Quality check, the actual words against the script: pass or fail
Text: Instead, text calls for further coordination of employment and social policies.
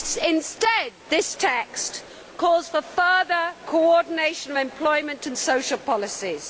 fail